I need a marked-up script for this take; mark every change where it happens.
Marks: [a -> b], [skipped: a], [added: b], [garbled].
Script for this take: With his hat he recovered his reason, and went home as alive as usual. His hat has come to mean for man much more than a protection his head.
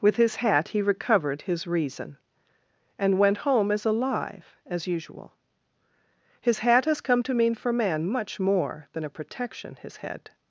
With his hat he recovered his reason, and went home as alive as usual. His hat has come to mean for man much more than a protection his head.